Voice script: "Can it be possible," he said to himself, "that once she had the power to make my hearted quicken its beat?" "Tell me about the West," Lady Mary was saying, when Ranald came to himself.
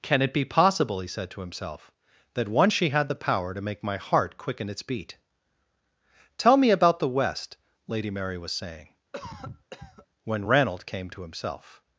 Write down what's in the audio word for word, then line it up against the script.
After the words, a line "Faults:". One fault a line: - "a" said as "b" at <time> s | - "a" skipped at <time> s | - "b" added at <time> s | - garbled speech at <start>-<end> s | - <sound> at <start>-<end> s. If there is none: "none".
"Can it be possible," he said to himself, "that once she had the power to make my heart quicken its beat?" "Tell me about the West," Lady Mary was saying, when Ranald came to himself.
Faults:
- "hearted" said as "heart" at 4.0 s
- cough at 9.1-10.1 s